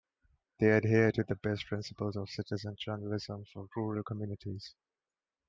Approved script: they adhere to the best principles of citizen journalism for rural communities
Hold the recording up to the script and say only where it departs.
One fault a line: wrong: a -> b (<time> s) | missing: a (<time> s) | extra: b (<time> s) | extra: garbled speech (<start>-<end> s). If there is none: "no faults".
no faults